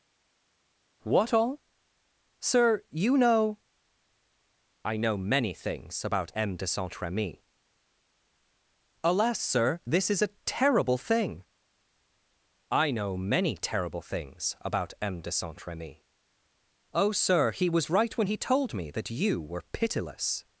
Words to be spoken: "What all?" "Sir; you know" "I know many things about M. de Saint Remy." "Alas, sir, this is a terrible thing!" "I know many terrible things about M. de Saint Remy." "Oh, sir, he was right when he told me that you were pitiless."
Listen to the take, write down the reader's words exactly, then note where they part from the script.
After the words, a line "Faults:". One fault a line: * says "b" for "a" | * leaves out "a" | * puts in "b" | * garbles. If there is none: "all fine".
"What all?" "Sir; you know" "I know many things about M. de Saint Remy." "Alas, sir, this is a terrible thing!" "I know many terrible things about M. de Saint Remy." "Oh, sir, he was right when he told me that you were pitiless."
Faults:
all fine